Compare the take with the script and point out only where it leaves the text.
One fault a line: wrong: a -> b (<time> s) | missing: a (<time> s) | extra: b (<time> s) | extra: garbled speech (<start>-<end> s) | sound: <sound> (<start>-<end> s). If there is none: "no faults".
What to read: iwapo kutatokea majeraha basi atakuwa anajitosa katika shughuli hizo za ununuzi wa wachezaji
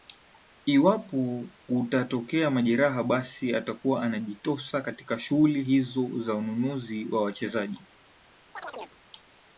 sound: chirp (8.6-9.0 s)